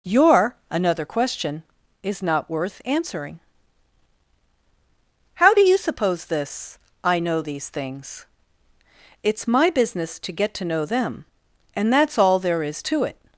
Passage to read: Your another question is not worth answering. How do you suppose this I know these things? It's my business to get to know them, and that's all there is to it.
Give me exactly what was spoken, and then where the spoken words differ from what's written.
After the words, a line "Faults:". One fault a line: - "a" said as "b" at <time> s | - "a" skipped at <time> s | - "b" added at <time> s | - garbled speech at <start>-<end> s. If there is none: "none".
Your another question is not worth answering. How do you suppose this I know these things? It's my business to get to know them, and that's all there is to it.
Faults:
none